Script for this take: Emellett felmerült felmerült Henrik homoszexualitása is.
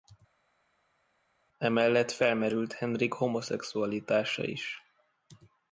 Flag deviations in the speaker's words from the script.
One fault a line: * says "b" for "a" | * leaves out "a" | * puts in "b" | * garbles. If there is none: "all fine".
* leaves out "felmerült"